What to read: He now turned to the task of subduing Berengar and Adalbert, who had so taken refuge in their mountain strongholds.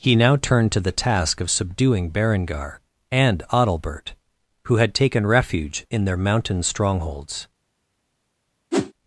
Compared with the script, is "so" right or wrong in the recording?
wrong